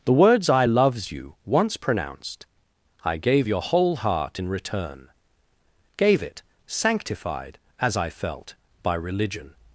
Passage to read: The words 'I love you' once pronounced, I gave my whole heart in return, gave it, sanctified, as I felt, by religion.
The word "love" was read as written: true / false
false